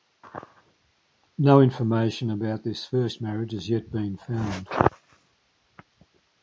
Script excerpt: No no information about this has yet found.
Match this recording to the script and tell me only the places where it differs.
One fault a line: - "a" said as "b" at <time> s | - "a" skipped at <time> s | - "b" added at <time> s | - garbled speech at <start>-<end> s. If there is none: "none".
- "no" skipped at 1.6 s
- "first marriage" added at 2.9 s
- "been" added at 3.9 s